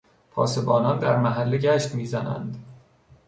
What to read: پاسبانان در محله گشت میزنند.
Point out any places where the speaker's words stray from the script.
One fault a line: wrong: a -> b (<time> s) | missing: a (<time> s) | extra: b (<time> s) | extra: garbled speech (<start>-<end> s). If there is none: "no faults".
no faults